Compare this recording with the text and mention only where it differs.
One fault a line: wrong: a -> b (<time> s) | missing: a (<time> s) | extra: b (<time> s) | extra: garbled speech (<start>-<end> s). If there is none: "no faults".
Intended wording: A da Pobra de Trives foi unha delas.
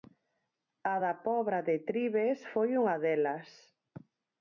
no faults